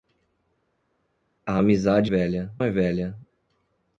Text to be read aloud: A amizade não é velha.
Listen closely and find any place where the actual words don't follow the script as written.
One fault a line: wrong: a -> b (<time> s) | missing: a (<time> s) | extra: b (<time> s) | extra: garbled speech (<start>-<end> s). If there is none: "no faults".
wrong: não -> velha (2.0 s)